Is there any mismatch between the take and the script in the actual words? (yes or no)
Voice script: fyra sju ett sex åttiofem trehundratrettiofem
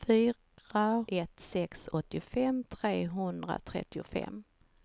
yes